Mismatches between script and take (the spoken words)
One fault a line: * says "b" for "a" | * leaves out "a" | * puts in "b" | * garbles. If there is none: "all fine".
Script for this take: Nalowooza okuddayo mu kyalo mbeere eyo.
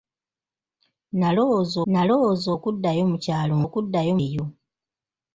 * puts in "nalowooza"
* says "okuddayo" for "mbeere"